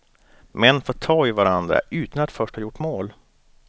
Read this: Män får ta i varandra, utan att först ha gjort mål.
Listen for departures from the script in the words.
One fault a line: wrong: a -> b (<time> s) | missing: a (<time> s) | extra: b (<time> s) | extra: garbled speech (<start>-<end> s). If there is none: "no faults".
no faults